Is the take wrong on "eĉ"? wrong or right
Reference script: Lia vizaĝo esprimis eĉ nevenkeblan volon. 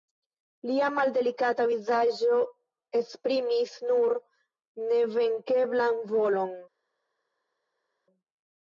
wrong